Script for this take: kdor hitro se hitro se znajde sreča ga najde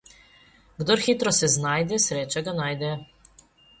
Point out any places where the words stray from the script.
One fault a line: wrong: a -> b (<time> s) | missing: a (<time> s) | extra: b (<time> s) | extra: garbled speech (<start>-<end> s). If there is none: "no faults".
missing: hitro se (1.5 s)